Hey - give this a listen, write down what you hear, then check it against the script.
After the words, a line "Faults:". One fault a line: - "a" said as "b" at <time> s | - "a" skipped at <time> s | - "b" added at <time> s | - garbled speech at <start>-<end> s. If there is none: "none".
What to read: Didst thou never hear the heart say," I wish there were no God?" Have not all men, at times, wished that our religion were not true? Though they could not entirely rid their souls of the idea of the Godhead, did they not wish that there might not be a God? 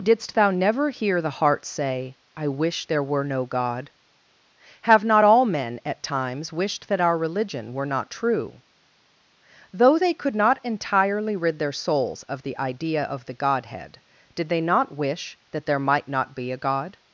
Didst thou never hear the heart say," I wish there were no God?" Have not all men, at times, wished that our religion were not true? Though they could not entirely rid their souls of the idea of the Godhead, did they not wish that there might not be a God?
Faults:
none